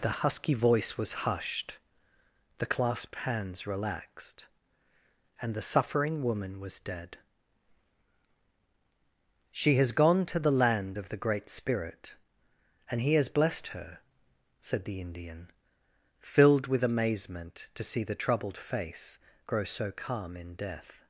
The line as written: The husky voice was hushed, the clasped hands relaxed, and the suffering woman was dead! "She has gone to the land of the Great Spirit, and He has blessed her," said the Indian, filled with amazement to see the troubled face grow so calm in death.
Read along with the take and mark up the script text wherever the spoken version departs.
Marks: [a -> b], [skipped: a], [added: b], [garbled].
The husky voice was hushed, the clasped hands relaxed, and the suffering woman was dead! "She has gone to the land of the Great Spirit, and He has blessed her," said the Indian, filled with amazement to see the troubled face grow so calm in death.